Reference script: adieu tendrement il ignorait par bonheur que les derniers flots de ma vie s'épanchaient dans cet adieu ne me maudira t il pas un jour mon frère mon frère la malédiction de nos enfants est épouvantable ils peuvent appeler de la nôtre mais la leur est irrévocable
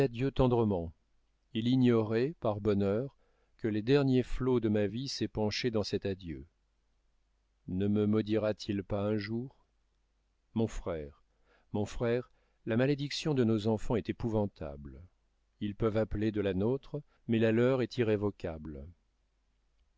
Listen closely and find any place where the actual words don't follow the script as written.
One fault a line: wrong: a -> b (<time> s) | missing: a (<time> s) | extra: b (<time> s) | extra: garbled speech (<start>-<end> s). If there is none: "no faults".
no faults